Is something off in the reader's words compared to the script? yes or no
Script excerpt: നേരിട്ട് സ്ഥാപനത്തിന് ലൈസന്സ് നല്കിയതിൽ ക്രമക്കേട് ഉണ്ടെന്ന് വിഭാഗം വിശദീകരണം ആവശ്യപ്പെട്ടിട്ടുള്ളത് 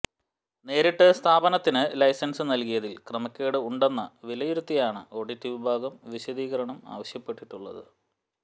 yes